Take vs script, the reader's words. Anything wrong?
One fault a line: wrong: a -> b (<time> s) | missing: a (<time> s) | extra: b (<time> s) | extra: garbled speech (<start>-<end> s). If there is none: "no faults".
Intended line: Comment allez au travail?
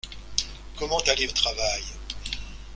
no faults